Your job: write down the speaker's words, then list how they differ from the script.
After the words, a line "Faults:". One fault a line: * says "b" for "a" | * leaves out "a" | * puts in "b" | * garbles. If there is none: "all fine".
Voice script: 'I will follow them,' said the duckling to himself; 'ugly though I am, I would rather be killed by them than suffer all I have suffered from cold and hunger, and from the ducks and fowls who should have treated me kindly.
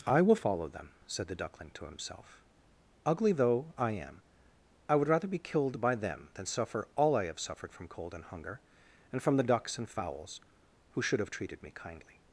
'I will follow them,' said the duckling to himself; 'ugly though I am, I would rather be killed by them than suffer all I have suffered from cold and hunger, and from the ducks and fowls who should have treated me kindly.
Faults:
all fine